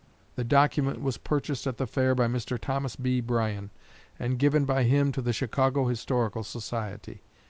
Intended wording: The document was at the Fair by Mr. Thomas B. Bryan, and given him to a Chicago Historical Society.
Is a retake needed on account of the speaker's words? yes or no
yes